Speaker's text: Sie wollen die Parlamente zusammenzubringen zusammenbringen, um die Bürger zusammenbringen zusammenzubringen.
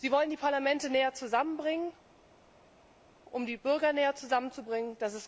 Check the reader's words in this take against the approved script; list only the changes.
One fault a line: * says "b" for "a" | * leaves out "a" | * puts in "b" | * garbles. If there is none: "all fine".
* says "näher" for "zusammenzubringen"
* says "näher" for "zusammenbringen"